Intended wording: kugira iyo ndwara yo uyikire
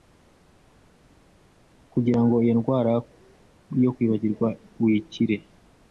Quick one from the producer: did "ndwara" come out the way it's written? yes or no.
yes